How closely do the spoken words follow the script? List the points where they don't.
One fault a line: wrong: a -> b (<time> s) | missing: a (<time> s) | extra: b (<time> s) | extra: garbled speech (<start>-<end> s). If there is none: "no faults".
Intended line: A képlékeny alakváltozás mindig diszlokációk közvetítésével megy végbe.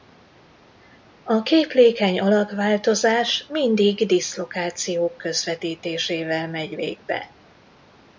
no faults